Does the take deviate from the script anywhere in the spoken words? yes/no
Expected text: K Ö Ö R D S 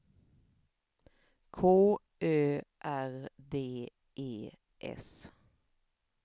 yes